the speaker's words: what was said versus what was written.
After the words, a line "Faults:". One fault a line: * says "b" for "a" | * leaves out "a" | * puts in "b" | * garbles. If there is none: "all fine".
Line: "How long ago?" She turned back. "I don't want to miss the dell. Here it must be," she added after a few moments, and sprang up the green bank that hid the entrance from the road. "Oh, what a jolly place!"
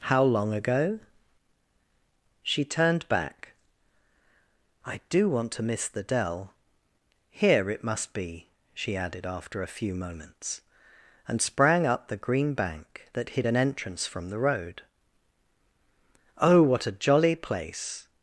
"How long ago?" She turned back. "I do want to miss the dell. Here it must be," she added after a few moments, and sprang up the green bank that hid an entrance from the road. "Oh, what a jolly place!"
Faults:
* says "do" for "don't"
* says "an" for "the"